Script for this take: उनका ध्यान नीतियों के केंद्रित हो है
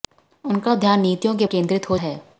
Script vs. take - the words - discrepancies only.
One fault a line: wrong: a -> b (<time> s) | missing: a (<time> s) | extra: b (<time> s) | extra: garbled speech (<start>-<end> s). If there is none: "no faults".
no faults